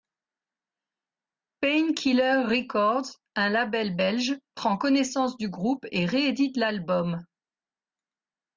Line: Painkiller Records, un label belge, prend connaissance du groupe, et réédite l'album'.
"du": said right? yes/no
yes